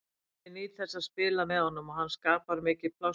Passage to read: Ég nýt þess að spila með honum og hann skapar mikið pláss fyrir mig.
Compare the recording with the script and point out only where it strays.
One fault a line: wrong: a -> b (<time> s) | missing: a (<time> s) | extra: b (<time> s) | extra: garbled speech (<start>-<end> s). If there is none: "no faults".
no faults